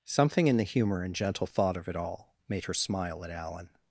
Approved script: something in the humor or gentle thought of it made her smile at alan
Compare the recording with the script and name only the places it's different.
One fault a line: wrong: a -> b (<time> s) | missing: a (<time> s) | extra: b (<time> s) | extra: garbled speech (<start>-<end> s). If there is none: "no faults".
wrong: or -> and (1.0 s)
extra: all (1.9 s)